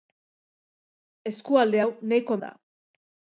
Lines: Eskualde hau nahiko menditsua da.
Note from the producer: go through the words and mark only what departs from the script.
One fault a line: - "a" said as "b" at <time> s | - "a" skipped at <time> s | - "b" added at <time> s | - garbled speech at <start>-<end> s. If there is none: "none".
- "menditsua" skipped at 2.4 s